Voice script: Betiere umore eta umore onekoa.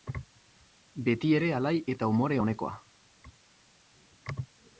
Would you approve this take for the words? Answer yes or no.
no